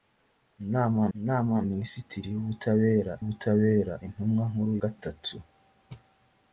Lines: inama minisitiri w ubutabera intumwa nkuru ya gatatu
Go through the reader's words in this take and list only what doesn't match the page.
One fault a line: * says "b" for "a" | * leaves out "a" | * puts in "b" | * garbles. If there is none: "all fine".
* puts in "inama"
* puts in "ubutabera"
* leaves out "ya"